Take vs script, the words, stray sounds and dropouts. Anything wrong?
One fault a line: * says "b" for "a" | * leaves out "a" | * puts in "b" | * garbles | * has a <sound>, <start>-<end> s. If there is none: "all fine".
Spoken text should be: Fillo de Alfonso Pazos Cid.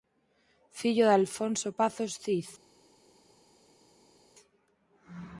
all fine